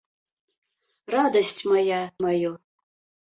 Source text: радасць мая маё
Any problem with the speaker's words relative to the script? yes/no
no